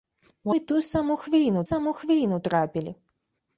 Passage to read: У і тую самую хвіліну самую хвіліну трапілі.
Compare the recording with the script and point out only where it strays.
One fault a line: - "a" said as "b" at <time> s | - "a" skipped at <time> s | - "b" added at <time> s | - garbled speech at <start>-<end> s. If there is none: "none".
none